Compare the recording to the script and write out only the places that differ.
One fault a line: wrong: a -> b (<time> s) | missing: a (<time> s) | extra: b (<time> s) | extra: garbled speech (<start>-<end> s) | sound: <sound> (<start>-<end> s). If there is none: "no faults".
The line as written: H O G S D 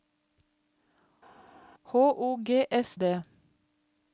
no faults